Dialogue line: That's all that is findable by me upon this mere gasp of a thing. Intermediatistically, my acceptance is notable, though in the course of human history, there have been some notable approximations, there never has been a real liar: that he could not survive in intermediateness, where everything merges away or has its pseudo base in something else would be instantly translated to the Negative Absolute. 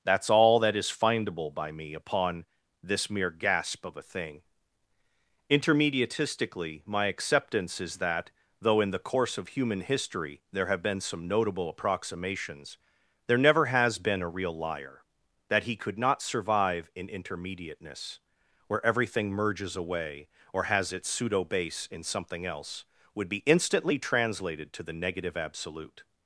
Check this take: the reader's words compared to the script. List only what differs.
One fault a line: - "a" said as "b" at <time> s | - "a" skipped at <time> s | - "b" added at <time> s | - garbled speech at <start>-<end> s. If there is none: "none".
- "notable" said as "that" at 8.0 s